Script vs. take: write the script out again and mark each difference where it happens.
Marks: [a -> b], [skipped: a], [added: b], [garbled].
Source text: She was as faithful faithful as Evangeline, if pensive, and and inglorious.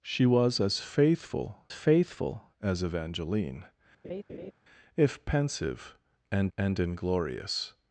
She was as faithful faithful as Evangeline, if pensive, and and inglorious.